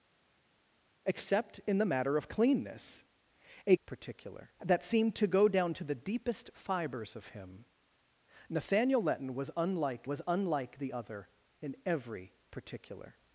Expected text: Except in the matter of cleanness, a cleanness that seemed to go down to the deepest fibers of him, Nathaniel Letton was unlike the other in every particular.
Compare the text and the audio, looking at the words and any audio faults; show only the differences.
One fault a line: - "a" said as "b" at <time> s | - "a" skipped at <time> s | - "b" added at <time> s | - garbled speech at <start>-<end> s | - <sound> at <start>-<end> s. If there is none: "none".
- "cleanness" said as "particular" at 3.8 s
- "was unlike" added at 10.1 s